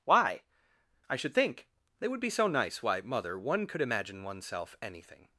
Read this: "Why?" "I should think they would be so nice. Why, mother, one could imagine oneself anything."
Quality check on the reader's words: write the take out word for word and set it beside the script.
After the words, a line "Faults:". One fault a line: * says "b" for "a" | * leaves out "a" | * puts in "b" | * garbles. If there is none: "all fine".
"Why?" "I should think they would be so nice. Why, mother, one could imagine oneself anything."
Faults:
all fine